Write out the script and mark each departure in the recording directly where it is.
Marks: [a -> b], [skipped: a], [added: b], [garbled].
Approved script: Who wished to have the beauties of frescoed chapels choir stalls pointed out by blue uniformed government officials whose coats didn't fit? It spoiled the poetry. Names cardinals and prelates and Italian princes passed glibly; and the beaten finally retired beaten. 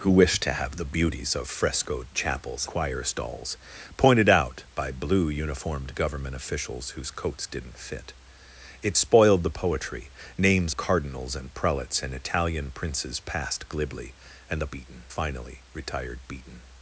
Who wished to have the beauties of frescoed chapels choir stalls pointed out by blue uniformed government officials whose coats didn't fit? It spoiled the poetry. Names cardinals and prelates and Italian princes passed glibly; and the beaten finally retired beaten.